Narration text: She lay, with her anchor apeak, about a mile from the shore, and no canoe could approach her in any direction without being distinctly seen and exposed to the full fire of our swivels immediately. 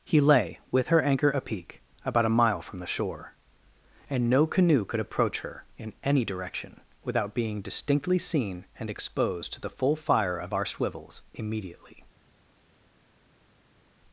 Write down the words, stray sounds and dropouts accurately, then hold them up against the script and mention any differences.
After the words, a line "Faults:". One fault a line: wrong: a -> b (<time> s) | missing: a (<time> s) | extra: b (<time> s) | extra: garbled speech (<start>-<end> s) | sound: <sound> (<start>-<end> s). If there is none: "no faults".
He lay, with her anchor apeak, about a mile from the shore, and no canoe could approach her in any direction without being distinctly seen and exposed to the full fire of our swivels immediately.
Faults:
wrong: She -> He (0.0 s)